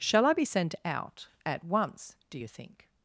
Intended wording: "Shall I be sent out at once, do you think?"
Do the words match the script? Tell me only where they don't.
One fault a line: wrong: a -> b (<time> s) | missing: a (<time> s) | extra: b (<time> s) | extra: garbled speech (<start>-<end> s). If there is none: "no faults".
no faults